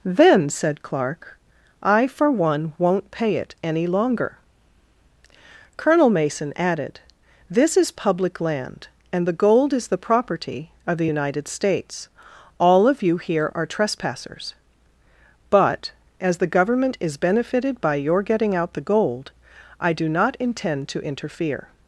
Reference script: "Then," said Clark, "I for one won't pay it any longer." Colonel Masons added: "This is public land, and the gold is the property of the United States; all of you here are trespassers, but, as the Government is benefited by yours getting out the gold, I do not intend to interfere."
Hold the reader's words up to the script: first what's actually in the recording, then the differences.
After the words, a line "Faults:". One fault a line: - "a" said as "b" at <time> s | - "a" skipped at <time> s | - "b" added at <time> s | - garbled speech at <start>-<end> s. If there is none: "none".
"Then," said Clark, "I for one won't pay it any longer." Colonel Mason added: "This is public land, and the gold is the property of the United States; all of you here are trespassers, but, as the Government is benefited by your getting out the gold, I do not intend to interfere."
Faults:
- "Masons" said as "Mason" at 6.1 s
- "yours" said as "your" at 18.0 s